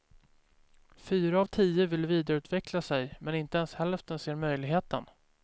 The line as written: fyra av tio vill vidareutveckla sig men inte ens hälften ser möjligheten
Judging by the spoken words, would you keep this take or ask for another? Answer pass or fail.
pass